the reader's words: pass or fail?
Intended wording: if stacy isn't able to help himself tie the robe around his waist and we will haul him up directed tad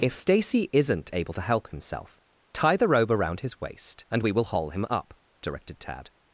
pass